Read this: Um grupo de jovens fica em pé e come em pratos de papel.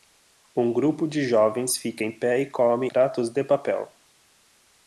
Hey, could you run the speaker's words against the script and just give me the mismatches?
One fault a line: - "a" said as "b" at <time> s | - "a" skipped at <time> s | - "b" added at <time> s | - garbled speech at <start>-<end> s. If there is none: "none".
- "em" skipped at 2.9 s